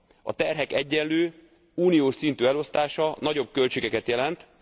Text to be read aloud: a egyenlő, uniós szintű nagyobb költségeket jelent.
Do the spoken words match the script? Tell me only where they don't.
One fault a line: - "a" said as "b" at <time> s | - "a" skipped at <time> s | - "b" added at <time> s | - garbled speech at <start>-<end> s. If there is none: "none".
- "terhek" added at 0.3 s
- "elosztása" added at 2.5 s